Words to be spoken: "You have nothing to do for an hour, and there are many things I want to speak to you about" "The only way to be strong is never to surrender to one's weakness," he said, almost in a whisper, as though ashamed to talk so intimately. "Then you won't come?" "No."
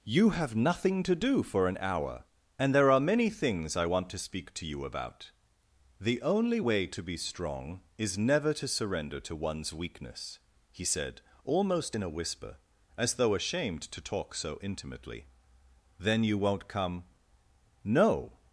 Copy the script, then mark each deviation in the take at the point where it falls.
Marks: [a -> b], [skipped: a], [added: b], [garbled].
"You have nothing to do for an hour, and there are many things I want to speak to you about" "The only way to be strong is never to surrender to one's weakness," he said, almost in a whisper, as though ashamed to talk so intimately. "Then you won't come?" "No."